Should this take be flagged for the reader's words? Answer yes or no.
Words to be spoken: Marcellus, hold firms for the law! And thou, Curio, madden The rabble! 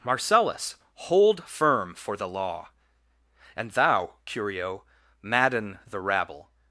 yes